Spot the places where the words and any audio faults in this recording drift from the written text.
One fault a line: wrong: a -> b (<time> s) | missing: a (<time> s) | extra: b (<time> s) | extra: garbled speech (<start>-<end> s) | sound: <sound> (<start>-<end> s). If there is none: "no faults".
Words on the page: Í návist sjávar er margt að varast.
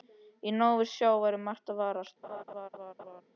sound: laugh (2.2-3.2 s)